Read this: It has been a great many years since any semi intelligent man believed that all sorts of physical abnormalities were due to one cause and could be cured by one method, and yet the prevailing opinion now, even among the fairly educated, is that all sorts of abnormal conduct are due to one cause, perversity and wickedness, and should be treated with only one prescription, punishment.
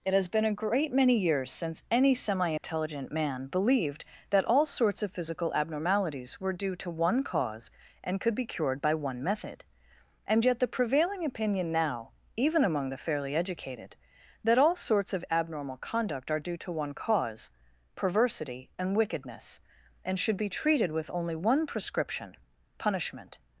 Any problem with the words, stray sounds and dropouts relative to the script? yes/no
yes